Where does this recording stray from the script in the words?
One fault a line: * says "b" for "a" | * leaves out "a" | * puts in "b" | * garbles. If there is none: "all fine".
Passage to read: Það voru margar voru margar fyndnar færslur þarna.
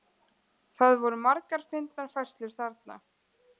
* leaves out "voru margar"